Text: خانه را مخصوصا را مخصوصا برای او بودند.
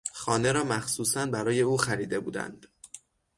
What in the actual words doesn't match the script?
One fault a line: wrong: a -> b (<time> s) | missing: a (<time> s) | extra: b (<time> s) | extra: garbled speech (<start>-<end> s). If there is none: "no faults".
missing: را مخصوصا (1.2 s)
extra: خریده (1.8 s)